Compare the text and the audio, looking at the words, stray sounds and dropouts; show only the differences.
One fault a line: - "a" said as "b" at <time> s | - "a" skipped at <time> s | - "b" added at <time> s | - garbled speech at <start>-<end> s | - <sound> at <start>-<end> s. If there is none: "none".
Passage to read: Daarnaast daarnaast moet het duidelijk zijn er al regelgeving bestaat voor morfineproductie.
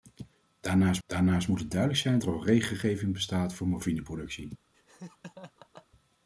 - laugh at 4.7-5.9 s